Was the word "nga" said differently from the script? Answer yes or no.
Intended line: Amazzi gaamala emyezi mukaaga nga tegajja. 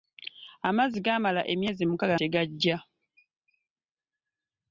yes